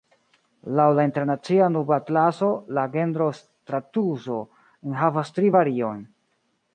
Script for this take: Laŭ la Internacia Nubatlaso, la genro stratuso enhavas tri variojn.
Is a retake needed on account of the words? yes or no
no